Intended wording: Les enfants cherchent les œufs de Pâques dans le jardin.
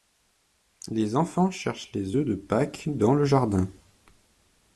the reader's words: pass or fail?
pass